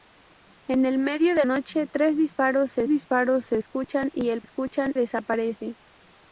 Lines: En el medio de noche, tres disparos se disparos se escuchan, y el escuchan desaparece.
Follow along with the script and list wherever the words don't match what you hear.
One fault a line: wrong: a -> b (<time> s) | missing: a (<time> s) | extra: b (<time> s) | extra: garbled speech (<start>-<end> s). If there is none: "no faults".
no faults